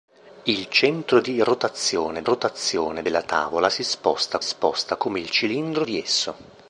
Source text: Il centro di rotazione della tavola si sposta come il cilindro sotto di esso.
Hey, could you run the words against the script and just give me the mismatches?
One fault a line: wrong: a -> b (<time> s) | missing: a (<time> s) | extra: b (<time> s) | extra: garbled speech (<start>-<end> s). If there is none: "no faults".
extra: rotazione (2.2 s)
extra: sposta (4.4 s)
missing: sotto (5.8 s)